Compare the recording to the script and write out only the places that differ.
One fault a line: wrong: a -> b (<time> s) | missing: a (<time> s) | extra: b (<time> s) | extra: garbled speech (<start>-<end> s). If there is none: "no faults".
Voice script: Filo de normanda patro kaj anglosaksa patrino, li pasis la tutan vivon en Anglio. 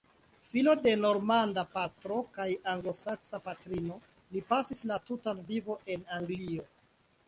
no faults